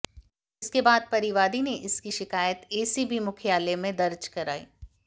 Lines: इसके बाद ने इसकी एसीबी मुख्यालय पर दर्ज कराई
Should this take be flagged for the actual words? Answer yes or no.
yes